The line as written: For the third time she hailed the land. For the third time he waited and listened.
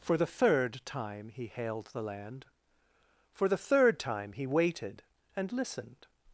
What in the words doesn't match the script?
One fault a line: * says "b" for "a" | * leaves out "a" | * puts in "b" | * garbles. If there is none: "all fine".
* says "he" for "she"